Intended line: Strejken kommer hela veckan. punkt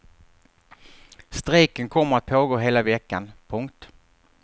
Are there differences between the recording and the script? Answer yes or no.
yes